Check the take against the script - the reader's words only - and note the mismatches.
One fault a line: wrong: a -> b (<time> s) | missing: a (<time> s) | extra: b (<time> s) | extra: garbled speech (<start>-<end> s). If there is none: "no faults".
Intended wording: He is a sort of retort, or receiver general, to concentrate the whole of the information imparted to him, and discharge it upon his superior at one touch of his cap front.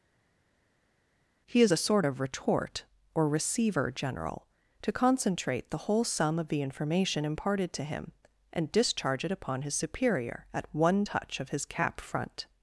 extra: sum (6.0 s)